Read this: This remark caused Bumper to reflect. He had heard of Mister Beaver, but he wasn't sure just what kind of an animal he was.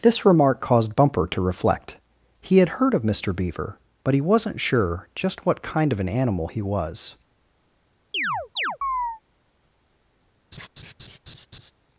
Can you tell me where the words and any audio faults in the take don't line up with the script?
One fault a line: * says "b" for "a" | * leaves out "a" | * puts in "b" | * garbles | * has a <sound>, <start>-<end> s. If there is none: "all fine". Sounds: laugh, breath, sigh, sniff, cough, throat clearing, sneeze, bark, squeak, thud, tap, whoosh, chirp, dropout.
* has a chirp, 8.1-9.2 s
* has a laugh, 10.5-11.7 s